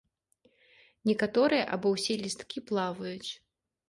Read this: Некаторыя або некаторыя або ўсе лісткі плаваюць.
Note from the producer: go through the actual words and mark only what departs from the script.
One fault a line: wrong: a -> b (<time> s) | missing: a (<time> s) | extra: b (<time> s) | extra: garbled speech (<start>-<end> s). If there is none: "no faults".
missing: некаторыя або (1.9 s)